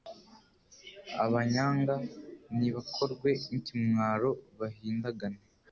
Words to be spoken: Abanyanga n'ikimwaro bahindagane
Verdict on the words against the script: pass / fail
fail